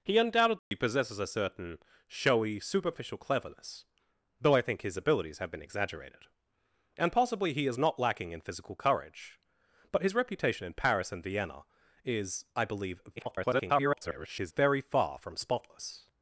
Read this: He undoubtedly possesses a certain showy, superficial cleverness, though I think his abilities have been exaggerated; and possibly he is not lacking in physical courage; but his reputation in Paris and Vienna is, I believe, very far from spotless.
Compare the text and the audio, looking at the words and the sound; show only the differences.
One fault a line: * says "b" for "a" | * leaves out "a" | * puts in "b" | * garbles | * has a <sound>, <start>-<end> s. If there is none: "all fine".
* has a dropout, 0.6-0.7 s
* garbles